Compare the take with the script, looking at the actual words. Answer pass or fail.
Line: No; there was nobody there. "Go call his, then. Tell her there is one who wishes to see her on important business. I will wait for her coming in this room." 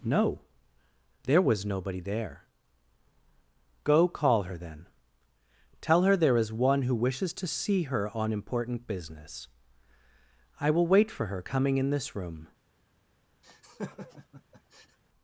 fail